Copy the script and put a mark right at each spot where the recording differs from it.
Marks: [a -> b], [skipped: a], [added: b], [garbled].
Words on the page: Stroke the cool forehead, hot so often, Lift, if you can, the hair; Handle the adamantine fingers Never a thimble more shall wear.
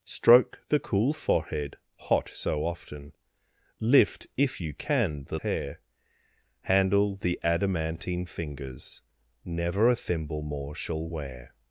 Stroke the cool forehead, hot so often, Lift, if you can, the hair; Handle the adamantine fingers Never a thimble more shall wear.